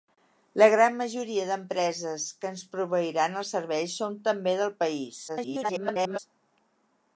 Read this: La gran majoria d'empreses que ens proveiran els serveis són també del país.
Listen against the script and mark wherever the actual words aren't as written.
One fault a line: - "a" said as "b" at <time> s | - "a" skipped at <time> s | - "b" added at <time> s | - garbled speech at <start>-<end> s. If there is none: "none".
- garbled speech at 5.3-6.2 s